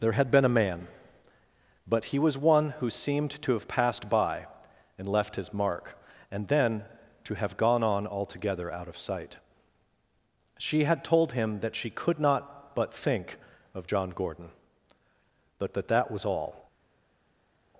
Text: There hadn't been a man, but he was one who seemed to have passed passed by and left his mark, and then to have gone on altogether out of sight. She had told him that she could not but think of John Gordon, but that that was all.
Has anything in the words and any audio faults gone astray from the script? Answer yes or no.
yes